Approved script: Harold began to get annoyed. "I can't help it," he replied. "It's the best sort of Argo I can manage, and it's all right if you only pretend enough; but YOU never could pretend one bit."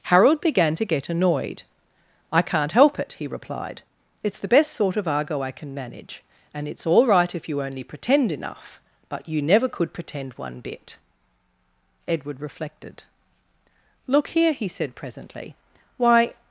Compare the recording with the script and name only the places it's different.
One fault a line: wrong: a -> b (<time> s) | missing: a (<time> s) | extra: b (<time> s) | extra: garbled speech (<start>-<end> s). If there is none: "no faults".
extra: Edward reflected Look here he said presently why (12.1 s)